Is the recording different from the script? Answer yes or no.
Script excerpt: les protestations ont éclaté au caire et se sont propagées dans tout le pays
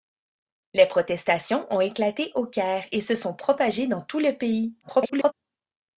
yes